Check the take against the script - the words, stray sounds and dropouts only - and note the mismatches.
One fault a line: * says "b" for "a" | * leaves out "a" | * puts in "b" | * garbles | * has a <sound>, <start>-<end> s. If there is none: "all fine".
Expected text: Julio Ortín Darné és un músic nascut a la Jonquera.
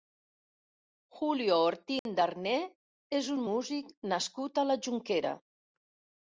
* has a dropout, 2.0-2.1 s